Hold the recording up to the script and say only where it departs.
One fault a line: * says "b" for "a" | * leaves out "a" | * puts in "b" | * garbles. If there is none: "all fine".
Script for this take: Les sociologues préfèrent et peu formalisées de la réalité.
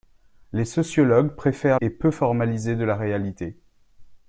all fine